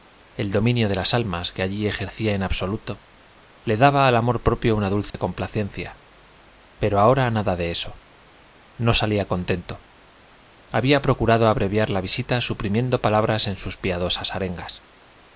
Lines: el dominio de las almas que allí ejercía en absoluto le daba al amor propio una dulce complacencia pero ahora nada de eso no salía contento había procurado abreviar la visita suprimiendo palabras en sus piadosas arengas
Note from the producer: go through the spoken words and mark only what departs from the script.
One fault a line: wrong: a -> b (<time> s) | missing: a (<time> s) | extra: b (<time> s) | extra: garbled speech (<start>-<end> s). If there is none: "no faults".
no faults